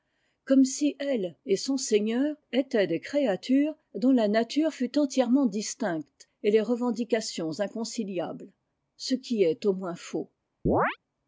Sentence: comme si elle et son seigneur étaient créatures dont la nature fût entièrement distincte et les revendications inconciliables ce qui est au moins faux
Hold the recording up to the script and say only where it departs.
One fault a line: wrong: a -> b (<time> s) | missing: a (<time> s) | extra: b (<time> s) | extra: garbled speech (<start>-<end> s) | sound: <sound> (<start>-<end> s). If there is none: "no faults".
extra: des (2.9 s)
sound: chirp (10.7-11.0 s)